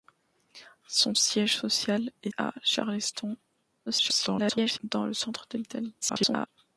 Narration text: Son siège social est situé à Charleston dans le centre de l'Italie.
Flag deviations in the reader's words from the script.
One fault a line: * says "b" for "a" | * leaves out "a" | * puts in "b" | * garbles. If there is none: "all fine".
* leaves out "situé"
* garbles
* garbles